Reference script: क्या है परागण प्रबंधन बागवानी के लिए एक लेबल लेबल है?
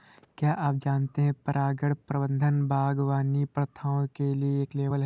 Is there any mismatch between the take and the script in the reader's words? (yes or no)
yes